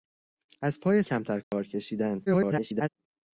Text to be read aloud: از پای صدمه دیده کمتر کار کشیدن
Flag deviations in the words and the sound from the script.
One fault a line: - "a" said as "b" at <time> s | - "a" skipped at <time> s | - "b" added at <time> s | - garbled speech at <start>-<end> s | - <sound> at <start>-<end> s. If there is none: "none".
- "صدمه دیده" skipped at 1.0 s
- dropout at 1.4-1.5 s
- garbled speech at 2.3-2.9 s